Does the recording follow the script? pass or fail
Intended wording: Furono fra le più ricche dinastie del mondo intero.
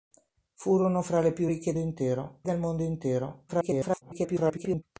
fail